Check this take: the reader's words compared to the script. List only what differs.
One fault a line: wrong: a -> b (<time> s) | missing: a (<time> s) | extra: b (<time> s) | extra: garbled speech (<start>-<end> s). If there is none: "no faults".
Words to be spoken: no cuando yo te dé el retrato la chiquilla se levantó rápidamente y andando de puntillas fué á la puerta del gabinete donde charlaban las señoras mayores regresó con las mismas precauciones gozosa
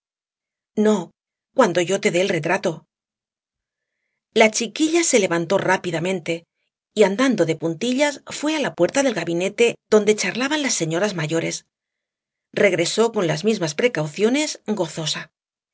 no faults